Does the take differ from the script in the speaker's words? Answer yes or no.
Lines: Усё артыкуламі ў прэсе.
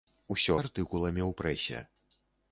no